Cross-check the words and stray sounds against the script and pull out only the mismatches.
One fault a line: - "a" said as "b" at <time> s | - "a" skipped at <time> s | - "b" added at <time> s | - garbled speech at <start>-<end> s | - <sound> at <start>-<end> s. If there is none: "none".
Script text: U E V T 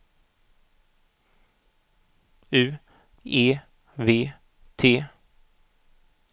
none